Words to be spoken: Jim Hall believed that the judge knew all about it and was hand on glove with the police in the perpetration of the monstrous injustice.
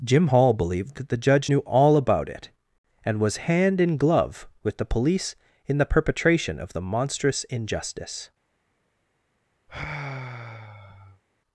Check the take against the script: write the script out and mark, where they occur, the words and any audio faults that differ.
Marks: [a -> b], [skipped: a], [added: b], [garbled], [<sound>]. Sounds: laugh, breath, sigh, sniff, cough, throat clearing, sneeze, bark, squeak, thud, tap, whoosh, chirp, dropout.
Jim Hall believed that the judge knew all about it and was hand [on -> in] glove with the police in the perpetration of the monstrous injustice. [sigh]